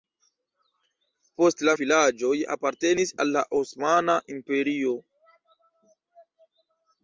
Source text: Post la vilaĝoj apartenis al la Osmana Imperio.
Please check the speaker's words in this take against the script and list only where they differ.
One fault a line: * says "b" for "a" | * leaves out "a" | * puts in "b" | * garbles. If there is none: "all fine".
all fine